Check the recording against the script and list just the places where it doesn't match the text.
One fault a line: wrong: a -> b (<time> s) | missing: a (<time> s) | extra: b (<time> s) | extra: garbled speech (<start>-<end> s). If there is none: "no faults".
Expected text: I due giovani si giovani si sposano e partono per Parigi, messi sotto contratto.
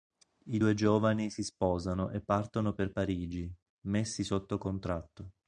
missing: giovani si (1.4 s)